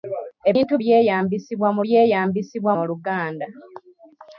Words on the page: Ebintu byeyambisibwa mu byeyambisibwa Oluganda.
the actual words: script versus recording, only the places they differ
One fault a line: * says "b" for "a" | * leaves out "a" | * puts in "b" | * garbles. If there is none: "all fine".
all fine